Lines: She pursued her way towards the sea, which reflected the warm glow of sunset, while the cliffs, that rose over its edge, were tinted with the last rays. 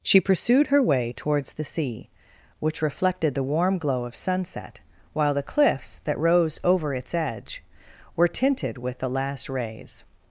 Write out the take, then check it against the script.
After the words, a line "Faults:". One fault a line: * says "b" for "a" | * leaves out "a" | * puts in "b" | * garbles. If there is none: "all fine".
She pursued her way towards the sea, which reflected the warm glow of sunset, while the cliffs, that rose over its edge, were tinted with the last rays.
Faults:
all fine